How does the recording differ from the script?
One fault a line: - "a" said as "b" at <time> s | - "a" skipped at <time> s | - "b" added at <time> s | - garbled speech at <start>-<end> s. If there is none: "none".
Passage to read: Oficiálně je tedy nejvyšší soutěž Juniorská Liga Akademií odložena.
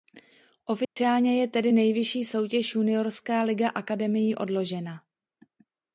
none